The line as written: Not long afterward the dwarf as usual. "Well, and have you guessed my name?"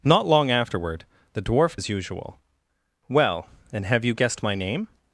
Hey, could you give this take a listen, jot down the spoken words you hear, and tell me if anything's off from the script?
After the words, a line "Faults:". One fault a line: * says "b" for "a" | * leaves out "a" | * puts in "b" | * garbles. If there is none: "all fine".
Not long afterward the dwarf as usual. "Well, and have you guessed my name?"
Faults:
all fine